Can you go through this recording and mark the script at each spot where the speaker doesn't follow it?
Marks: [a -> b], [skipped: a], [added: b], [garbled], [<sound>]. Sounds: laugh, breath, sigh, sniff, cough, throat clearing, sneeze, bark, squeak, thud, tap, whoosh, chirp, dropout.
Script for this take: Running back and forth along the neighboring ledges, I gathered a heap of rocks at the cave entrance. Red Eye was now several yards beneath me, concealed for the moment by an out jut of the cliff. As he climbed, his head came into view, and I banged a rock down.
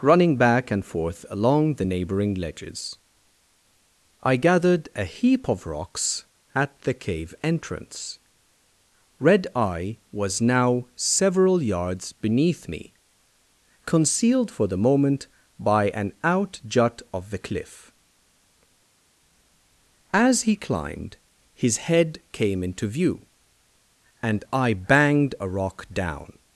Running back and forth along the neighboring ledges, I gathered a heap of rocks at the cave entrance. Red Eye was now several yards beneath me, concealed for the moment by an out jut of the cliff. As he climbed, his head came into view, and I banged a rock down.